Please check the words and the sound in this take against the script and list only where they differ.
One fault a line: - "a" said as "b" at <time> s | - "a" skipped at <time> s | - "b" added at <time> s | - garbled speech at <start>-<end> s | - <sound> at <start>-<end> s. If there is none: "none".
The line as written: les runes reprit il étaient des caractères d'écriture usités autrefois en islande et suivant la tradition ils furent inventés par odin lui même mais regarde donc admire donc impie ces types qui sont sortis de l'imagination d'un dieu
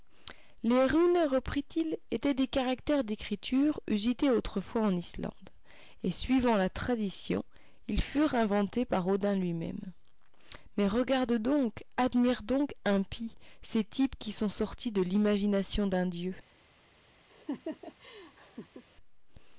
- laugh at 17.3-18.8 s